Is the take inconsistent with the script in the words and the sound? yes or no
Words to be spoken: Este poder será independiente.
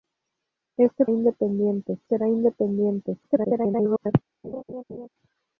yes